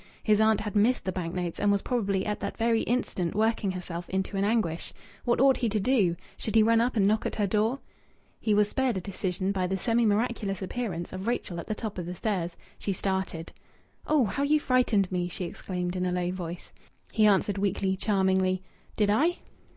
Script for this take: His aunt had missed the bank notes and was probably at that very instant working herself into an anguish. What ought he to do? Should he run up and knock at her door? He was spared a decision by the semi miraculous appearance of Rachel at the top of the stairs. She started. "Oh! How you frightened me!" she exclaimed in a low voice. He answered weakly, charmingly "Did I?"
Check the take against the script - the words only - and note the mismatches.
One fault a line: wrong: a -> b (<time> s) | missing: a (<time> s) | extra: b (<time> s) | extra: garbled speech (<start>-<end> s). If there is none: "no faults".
no faults